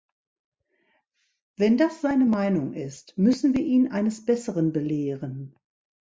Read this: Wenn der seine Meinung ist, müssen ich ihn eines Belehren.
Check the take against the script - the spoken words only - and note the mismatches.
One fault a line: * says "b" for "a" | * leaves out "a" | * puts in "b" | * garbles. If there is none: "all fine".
* says "das" for "der"
* says "wir" for "ich"
* puts in "Besseren"